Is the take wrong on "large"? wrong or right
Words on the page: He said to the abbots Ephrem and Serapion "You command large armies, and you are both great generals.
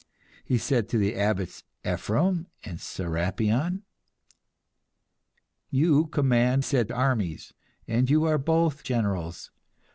wrong